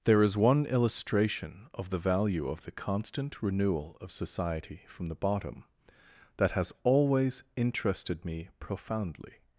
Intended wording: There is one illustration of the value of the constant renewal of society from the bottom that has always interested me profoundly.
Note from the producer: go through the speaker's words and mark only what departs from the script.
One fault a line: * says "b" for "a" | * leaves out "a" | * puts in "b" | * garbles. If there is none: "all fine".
all fine